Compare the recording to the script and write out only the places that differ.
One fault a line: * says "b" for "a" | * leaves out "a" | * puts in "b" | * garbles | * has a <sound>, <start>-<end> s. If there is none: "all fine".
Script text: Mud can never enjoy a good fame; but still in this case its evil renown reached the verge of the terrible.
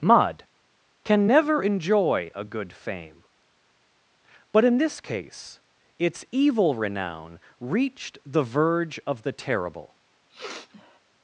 * leaves out "still"
* has a sniff, 10.3-11.0 s